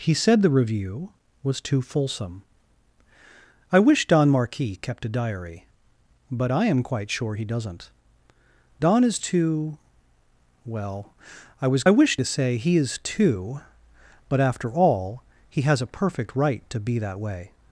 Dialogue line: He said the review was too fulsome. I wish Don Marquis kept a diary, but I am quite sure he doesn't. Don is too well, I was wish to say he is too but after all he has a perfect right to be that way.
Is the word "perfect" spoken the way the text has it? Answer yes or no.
yes